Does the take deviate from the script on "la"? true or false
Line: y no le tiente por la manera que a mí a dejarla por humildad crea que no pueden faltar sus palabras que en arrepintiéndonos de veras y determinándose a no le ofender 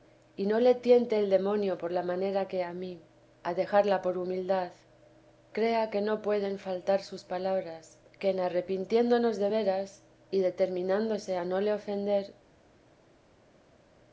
false